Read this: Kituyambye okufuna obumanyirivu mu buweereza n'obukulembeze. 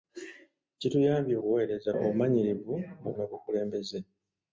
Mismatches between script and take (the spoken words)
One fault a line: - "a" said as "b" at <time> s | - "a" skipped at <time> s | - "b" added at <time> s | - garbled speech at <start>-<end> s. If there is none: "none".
- "okufuna" said as "buweereza" at 1.4 s
- "buweereza" skipped at 3.1 s